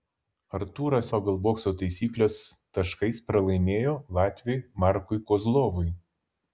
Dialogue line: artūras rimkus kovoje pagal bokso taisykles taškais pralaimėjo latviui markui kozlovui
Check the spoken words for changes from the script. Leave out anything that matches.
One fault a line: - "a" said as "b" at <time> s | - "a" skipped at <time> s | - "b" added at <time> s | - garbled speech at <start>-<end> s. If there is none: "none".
- "rimkus kovoje" skipped at 1.1 s